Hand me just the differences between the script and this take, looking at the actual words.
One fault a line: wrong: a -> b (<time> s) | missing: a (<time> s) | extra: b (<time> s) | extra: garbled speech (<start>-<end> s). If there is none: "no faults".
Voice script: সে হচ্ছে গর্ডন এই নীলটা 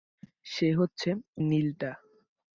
missing: গর্ডন এই (1.1 s)